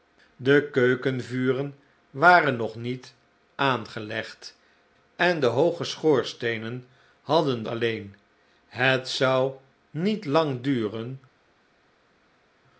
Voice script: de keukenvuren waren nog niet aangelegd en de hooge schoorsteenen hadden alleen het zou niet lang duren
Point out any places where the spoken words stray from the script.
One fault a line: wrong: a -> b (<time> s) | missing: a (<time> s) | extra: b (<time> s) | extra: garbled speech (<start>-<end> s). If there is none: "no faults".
no faults